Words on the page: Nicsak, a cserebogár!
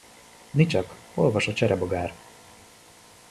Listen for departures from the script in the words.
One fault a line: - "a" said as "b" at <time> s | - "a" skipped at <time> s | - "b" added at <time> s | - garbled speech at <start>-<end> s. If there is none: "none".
- "olvas" added at 1.1 s